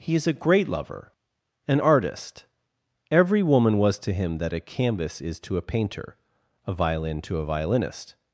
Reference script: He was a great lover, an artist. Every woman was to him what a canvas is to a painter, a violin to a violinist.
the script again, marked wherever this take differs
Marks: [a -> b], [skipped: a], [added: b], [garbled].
He [was -> is] a great lover, an artist. Every woman was to him [what -> that] a canvas is to a painter, a violin to a violinist.